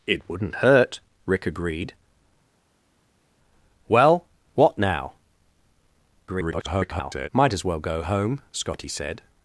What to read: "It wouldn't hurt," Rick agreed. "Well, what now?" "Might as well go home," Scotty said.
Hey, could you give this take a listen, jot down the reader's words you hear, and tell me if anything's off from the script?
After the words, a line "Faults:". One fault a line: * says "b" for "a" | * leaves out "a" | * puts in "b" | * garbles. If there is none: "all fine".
"It wouldn't hurt," Rick agreed. "Well, what now?" [garbled] "Might as well go home," Scotty said.
Faults:
* garbles